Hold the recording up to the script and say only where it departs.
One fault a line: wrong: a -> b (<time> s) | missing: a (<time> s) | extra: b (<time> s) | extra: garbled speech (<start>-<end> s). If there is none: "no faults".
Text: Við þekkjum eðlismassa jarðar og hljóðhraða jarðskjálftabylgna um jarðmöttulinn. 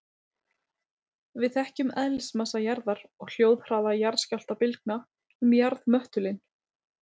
no faults